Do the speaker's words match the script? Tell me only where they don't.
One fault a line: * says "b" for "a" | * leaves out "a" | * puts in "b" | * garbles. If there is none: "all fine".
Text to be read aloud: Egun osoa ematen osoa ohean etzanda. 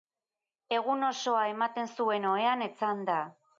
* says "zuen" for "osoa"